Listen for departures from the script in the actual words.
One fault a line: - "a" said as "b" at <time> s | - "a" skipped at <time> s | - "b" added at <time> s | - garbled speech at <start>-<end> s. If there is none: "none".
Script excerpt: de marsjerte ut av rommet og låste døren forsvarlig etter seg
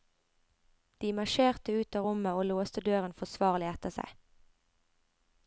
none